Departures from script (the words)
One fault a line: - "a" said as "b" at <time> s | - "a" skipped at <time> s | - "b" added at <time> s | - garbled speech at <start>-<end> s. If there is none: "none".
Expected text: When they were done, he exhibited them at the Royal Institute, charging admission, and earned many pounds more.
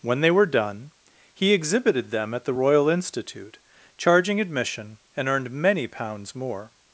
none